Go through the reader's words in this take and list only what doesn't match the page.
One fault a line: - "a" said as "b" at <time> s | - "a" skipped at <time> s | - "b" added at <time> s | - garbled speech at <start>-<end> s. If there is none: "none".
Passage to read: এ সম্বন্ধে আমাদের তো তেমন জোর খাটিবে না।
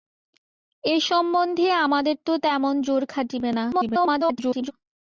- garbled speech at 3.7-4.7 s